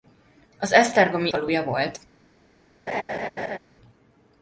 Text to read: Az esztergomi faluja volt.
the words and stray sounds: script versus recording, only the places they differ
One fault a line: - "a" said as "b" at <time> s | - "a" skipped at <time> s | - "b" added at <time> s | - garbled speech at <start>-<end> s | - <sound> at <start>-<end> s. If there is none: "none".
- laugh at 2.9-3.6 s